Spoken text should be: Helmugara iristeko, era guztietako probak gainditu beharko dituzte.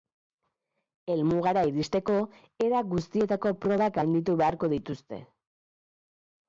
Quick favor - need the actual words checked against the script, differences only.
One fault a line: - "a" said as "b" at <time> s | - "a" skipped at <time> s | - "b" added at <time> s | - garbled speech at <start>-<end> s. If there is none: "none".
none